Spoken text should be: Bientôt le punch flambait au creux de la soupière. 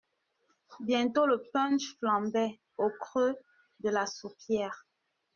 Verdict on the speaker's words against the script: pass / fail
pass